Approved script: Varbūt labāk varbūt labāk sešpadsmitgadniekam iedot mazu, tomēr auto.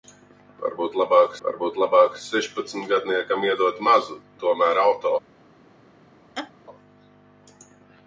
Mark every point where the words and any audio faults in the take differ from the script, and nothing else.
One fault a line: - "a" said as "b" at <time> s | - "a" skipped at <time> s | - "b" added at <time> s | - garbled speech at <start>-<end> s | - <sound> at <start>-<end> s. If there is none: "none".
- laugh at 6.4-6.5 s